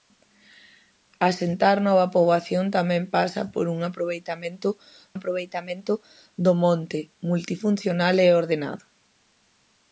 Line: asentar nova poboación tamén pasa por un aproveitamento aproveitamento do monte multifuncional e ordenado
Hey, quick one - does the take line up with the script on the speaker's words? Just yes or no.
yes